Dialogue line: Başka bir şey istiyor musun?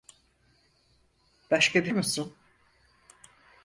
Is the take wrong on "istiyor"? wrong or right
wrong